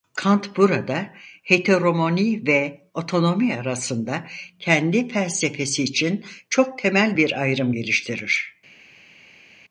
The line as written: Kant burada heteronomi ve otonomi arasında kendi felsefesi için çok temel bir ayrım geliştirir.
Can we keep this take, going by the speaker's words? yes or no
yes